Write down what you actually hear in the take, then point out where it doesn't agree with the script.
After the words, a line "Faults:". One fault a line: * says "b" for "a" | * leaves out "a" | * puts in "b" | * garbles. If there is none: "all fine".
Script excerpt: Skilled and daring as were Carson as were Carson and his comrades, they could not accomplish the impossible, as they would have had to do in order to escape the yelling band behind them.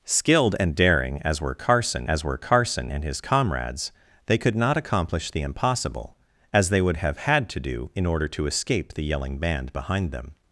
Skilled and daring as were Carson as were Carson and his comrades, they could not accomplish the impossible, as they would have had to do in order to escape the yelling band behind them.
Faults:
all fine